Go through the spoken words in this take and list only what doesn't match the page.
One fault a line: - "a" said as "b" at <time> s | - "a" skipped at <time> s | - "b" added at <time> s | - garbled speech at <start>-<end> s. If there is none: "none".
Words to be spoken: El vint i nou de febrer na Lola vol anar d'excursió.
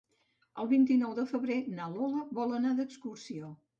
none